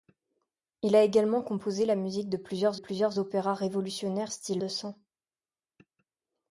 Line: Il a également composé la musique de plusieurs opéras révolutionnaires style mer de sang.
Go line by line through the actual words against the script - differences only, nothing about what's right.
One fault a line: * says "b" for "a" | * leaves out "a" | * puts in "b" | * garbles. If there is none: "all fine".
* puts in "plusieurs"
* leaves out "mer"